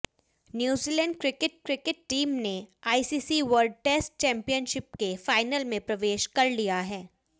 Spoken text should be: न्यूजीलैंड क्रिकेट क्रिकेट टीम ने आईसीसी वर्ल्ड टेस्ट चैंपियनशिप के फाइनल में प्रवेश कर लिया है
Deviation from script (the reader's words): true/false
false